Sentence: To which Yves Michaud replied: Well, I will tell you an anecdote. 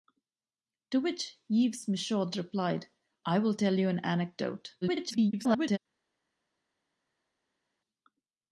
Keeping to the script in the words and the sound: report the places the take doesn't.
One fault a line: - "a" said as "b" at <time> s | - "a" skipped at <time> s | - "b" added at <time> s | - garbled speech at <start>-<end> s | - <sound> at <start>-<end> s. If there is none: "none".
- "Well" skipped at 2.9 s
- garbled speech at 4.8-5.8 s